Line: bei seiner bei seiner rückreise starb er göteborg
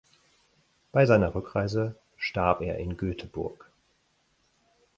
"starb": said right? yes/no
yes